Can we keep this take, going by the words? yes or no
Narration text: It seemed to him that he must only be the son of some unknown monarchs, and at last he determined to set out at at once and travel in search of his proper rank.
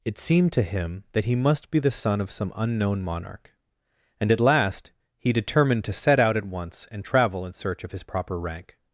no